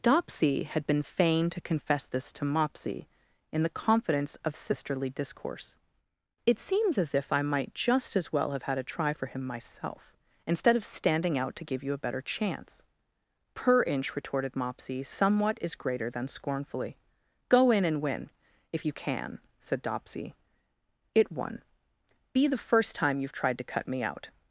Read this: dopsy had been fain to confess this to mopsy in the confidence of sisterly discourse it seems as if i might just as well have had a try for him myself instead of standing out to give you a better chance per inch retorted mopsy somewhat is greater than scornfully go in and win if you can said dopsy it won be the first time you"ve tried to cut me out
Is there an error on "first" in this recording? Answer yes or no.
no